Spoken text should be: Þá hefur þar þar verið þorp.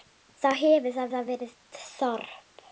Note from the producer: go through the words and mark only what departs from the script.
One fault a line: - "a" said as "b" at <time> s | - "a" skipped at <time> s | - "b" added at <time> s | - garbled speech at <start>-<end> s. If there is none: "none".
none